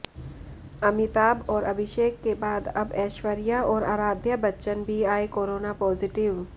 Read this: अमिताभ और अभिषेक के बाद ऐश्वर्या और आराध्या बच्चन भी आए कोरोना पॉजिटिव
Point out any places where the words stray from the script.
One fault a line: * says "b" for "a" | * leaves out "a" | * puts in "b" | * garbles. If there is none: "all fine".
* puts in "अब"